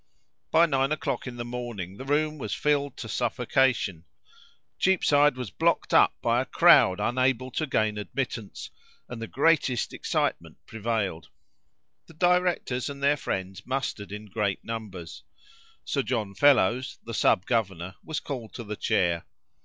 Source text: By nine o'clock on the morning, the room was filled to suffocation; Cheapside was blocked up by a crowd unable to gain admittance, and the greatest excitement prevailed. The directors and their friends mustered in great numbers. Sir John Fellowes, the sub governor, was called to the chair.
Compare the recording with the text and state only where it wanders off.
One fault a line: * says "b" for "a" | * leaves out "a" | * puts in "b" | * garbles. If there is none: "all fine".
* says "in" for "on"